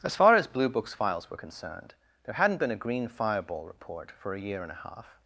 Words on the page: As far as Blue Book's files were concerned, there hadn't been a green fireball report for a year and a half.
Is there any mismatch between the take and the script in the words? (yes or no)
no